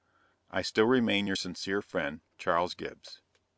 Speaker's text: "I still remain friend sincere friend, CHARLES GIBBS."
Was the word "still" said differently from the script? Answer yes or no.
no